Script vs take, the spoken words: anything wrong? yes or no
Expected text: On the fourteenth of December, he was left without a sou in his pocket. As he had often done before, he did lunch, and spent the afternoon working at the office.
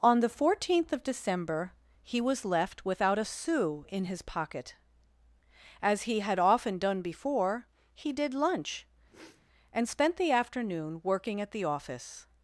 no